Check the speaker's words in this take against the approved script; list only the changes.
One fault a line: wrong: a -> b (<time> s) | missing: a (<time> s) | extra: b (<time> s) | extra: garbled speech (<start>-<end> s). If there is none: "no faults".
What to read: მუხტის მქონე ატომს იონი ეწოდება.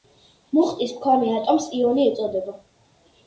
no faults